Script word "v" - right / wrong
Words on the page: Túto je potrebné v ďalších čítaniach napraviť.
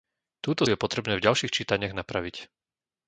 right